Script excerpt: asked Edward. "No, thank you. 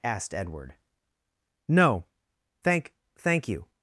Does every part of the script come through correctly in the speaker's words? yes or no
no